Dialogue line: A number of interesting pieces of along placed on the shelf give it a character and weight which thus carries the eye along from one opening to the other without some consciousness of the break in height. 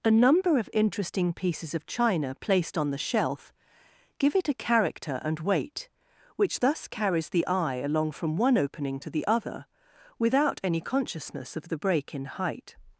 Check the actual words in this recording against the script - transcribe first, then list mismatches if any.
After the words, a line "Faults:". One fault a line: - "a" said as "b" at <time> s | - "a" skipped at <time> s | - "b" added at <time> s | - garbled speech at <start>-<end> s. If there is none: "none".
A number of interesting pieces of china placed on the shelf give it a character and weight which thus carries the eye along from one opening to the other without any consciousness of the break in height.
Faults:
- "along" said as "china" at 1.9 s
- "some" said as "any" at 10.6 s